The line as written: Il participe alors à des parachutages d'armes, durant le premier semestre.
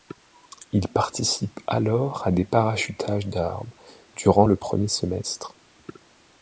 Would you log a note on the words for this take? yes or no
no